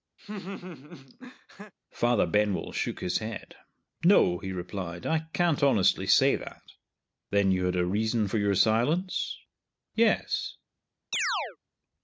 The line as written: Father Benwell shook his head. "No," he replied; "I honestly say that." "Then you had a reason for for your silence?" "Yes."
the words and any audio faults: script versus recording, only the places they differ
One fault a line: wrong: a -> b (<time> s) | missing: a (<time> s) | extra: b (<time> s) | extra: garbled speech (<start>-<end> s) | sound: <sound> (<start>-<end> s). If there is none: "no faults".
sound: laugh (0.2-1.7 s)
extra: can't (5.3 s)
missing: for (8.4 s)
sound: chirp (11.1-11.6 s)